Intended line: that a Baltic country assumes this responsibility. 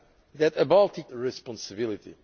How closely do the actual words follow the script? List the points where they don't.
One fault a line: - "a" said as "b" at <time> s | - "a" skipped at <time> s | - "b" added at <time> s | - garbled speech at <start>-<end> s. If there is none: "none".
- "country assumes this" skipped at 1.1 s